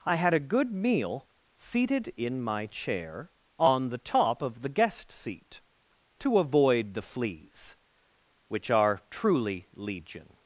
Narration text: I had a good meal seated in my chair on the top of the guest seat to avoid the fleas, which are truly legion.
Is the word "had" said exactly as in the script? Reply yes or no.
yes